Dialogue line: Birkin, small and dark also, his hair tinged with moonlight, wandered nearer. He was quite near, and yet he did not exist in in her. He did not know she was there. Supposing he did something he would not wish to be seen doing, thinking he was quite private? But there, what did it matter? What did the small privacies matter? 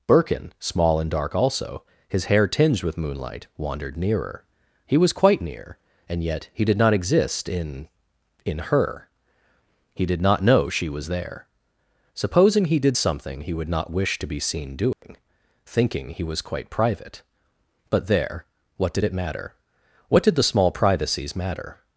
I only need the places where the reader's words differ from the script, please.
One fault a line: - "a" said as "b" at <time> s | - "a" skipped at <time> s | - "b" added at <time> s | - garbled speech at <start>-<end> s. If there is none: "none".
none